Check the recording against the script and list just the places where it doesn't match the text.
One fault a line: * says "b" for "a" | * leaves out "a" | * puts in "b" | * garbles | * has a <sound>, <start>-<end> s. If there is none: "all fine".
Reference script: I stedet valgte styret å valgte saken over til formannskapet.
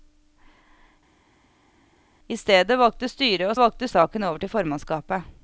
all fine